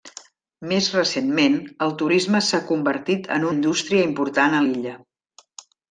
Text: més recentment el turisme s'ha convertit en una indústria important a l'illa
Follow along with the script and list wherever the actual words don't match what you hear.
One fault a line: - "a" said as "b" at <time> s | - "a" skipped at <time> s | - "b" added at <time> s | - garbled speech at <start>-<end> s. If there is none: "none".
- "una" skipped at 3.5 s